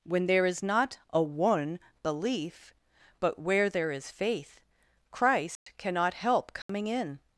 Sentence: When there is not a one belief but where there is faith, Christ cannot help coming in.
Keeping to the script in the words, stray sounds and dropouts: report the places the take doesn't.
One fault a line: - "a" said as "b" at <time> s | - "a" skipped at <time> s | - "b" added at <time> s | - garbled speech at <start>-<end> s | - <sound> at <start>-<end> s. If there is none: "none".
- dropout at 5.6-5.7 s
- dropout at 6.6-6.7 s